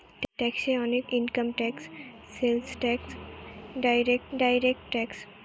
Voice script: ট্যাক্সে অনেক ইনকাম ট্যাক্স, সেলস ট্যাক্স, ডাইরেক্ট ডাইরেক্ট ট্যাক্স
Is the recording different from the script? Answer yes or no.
no